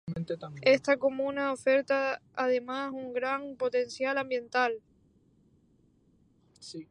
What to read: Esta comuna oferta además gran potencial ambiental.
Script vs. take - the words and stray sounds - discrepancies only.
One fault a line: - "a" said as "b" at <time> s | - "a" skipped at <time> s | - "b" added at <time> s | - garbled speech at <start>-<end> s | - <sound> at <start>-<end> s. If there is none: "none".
- "un" added at 2.9 s